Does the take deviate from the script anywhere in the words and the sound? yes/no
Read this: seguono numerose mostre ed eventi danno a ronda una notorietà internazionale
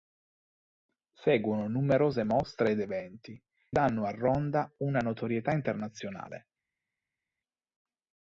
no